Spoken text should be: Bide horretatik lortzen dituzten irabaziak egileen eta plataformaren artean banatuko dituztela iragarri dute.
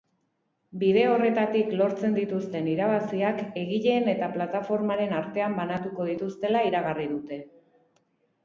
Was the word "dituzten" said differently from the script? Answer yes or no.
no